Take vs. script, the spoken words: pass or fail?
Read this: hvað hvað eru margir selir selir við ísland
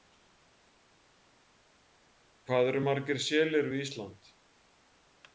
fail